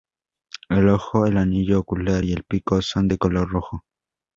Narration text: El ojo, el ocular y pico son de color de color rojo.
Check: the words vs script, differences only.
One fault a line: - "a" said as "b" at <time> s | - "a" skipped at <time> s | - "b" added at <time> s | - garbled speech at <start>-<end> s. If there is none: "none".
- "anillo" added at 1.4 s
- "el" added at 2.3 s
- "de color" skipped at 3.5 s